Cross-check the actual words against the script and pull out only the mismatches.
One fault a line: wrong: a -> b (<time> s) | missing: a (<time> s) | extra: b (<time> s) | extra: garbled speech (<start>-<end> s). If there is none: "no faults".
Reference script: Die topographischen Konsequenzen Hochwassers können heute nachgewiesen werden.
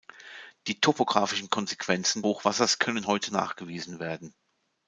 no faults